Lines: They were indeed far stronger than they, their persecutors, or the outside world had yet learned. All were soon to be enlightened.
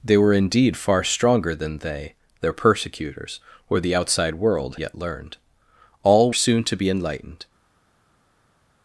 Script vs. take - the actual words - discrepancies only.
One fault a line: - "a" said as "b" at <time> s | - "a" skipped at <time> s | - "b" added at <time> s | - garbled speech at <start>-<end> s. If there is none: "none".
- "had" skipped at 4.8 s
- "were" skipped at 6.3 s